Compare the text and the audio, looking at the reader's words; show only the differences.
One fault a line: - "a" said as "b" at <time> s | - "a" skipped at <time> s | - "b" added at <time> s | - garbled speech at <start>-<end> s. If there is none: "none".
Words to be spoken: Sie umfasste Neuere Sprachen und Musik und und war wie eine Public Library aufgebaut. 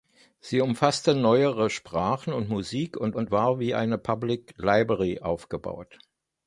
none